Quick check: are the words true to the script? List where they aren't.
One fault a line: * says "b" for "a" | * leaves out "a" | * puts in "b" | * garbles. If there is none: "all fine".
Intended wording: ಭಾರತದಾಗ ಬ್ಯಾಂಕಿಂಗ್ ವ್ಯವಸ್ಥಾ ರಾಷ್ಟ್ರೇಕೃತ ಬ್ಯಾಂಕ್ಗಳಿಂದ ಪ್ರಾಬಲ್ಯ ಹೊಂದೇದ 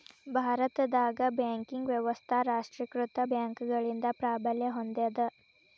all fine